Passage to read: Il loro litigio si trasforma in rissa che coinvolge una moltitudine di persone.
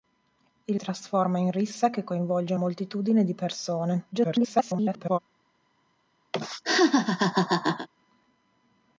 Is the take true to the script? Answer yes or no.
no